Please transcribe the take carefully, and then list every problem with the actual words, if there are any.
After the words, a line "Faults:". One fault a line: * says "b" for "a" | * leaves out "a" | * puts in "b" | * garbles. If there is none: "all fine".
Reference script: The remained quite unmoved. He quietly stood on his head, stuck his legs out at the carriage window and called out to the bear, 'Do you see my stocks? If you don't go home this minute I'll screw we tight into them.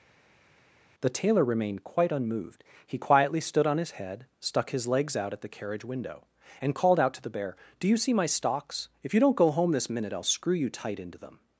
The tailor remained quite unmoved. He quietly stood on his head, stuck his legs out at the carriage window and called out to the bear, 'Do you see my stocks? If you don't go home this minute I'll screw you tight into them.
Faults:
* puts in "tailor"
* says "you" for "we"